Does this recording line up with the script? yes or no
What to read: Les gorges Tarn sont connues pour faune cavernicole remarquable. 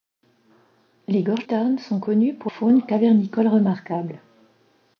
yes